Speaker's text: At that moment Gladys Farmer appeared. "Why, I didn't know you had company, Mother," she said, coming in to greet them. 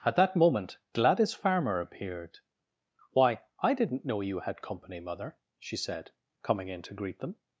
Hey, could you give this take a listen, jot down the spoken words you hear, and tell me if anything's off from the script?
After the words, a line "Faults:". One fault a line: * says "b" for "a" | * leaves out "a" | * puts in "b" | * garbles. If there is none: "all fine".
At that moment Gladys Farmer appeared. "Why, I didn't know you had company, Mother," she said, coming in to greet them.
Faults:
all fine